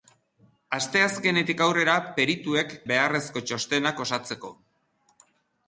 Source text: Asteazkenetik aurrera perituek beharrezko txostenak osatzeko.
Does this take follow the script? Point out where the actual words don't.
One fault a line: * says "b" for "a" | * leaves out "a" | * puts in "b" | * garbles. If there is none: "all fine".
all fine